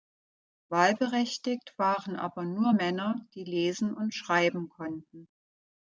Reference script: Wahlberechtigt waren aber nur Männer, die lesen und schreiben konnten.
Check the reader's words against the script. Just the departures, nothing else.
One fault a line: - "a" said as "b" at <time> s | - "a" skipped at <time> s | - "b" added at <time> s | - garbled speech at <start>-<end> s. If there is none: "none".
none